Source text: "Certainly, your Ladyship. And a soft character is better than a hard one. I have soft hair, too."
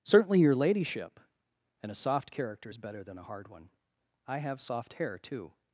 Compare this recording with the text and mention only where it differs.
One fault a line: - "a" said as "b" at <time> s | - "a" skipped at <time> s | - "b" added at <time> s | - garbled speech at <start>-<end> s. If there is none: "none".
none